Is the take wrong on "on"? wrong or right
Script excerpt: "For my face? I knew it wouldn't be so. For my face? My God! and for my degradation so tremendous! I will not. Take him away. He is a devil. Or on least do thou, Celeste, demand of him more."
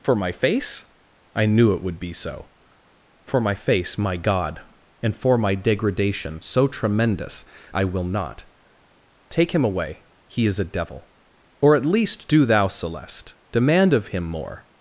wrong